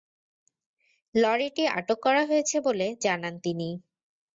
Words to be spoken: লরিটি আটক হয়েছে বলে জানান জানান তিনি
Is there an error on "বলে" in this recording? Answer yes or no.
no